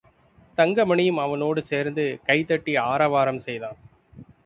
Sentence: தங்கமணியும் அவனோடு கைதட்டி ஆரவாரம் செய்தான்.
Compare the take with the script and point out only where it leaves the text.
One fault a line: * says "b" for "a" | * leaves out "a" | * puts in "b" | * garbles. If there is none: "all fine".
* puts in "சேர்ந்து"